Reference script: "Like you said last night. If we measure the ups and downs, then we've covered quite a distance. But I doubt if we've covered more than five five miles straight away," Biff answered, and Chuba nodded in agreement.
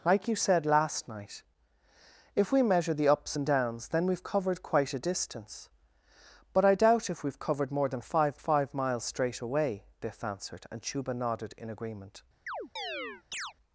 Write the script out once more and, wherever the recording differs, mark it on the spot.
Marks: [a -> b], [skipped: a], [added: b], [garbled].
"Like you said last night. If we measure the ups and downs, then we've covered quite a distance. But I doubt if we've covered more than five five miles straight away," Biff answered, and Chuba nodded in agreement.